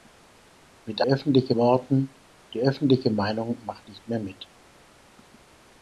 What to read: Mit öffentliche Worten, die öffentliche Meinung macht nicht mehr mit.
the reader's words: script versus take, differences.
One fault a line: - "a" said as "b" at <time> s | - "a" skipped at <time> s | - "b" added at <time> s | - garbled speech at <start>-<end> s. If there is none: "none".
none